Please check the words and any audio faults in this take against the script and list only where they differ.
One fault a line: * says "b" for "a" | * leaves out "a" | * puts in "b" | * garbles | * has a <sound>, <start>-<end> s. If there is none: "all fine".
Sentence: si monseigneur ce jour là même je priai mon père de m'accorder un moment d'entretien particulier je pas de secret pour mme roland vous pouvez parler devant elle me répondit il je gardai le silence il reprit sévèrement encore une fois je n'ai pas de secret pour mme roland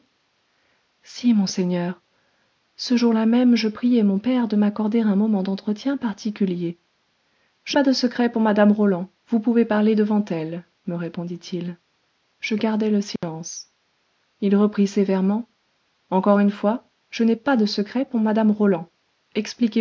* has a dropout, 13.2-13.2 s